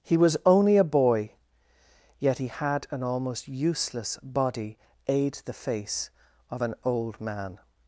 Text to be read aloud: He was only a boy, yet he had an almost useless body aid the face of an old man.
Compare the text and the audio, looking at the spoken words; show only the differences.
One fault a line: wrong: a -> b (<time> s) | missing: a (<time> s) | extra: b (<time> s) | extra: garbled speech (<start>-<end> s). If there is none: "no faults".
no faults